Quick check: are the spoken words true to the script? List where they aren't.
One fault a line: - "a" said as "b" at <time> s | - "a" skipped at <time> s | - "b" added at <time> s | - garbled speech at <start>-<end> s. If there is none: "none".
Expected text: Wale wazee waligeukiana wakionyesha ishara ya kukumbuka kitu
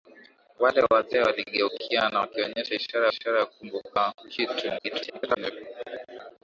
- "ishara" added at 3.1 s
- garbled speech at 4.8-5.5 s